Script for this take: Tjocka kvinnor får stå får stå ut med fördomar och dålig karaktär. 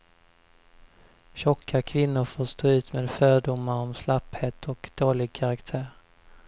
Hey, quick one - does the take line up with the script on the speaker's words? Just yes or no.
no